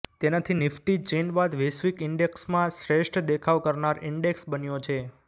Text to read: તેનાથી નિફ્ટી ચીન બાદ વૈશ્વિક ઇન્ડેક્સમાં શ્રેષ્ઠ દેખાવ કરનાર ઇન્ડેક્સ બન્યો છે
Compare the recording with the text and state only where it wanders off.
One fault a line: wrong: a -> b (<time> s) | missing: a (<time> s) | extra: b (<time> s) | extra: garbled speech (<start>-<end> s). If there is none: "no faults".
no faults